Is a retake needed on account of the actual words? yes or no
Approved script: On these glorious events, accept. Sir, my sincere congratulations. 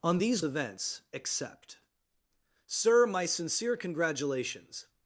yes